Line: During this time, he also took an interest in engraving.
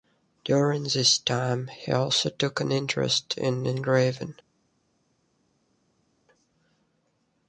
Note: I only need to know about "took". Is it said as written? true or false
true